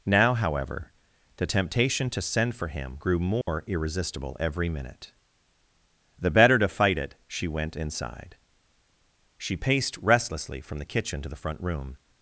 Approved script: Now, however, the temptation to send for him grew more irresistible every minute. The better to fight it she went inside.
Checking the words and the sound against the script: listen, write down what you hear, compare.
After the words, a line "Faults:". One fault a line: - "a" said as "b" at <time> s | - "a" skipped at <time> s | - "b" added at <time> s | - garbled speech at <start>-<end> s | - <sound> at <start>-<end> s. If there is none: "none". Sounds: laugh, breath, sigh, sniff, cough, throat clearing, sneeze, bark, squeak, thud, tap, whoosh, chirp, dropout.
Now, however, the temptation to send for him grew more irresistible every minute. The better to fight it she went inside. She paced restlessly from the kitchen to the front room
Faults:
- dropout at 3.4-3.5 s
- "She paced restlessly from the kitchen to the front room" added at 9.4 s